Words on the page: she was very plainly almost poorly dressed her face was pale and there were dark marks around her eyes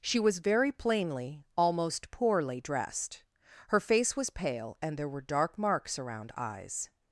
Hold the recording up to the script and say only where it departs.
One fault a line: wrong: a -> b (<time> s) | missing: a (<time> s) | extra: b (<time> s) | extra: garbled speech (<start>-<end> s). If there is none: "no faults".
missing: her (6.3 s)